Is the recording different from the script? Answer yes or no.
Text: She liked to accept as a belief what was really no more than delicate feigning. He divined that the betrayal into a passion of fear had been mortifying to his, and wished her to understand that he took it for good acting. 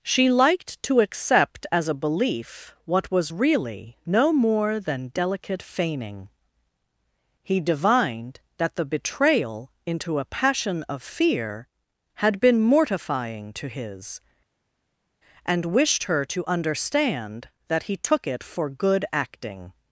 no